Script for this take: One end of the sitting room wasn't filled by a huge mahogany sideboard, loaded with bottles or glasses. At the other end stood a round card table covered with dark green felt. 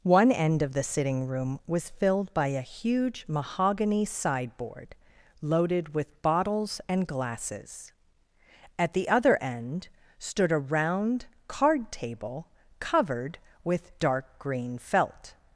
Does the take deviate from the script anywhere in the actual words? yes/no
yes